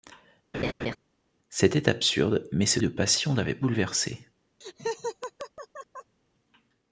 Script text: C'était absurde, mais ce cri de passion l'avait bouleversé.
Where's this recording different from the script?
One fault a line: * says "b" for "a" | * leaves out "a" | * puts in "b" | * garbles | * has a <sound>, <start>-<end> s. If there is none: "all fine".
* has a laugh, 0.5-1.0 s
* leaves out "cri"
* has a laugh, 4.6-6.2 s